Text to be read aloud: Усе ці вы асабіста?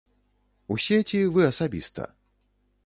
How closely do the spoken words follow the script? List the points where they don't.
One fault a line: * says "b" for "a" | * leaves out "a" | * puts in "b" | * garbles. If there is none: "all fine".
all fine